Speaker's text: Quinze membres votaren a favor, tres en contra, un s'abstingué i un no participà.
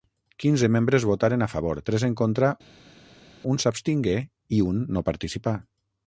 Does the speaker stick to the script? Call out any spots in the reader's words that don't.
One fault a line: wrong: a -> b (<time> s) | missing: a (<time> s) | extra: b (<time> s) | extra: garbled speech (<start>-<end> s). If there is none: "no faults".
no faults